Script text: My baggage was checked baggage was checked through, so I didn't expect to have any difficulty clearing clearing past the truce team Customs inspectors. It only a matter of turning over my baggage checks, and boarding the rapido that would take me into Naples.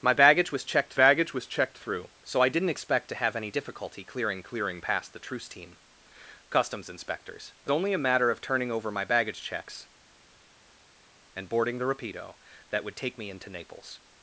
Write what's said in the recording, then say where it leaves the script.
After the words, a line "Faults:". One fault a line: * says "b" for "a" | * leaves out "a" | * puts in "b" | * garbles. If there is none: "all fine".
My baggage was checked baggage was checked through, so I didn't expect to have any difficulty clearing clearing past the truce team Customs inspectors. It only a matter of turning over my baggage checks, and boarding the rapido that would take me into Naples.
Faults:
all fine